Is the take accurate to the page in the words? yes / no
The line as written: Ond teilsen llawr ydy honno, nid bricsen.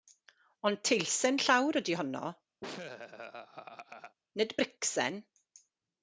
yes